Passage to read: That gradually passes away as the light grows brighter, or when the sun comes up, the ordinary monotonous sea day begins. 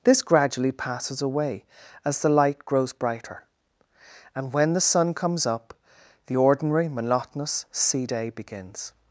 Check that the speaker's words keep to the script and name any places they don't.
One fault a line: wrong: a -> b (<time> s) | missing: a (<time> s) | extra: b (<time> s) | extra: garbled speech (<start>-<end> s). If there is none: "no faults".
wrong: That -> This (0.0 s)
wrong: or -> and (4.3 s)